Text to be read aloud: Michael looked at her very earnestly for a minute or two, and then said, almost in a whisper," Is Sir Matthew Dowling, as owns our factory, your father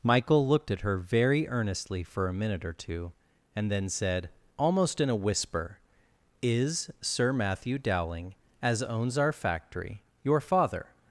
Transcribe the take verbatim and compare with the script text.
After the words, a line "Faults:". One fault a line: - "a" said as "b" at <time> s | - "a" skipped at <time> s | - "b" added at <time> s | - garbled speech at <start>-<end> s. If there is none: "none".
Michael looked at her very earnestly for a minute or two, and then said, almost in a whisper," Is Sir Matthew Dowling, as owns our factory, your father
Faults:
none